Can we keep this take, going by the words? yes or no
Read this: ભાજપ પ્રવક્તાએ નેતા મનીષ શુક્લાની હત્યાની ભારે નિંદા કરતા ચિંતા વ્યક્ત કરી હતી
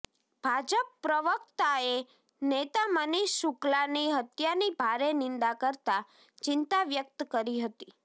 yes